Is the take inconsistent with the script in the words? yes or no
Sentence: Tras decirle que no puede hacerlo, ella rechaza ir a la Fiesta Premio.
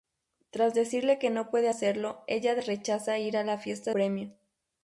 no